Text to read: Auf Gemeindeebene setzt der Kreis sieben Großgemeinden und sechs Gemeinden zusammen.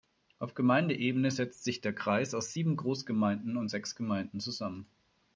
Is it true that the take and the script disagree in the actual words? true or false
true